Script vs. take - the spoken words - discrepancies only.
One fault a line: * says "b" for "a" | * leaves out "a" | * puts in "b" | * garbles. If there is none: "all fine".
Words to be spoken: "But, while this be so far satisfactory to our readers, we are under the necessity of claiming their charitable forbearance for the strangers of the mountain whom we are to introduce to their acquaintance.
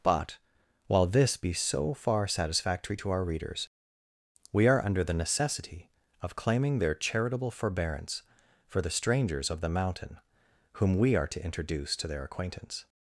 all fine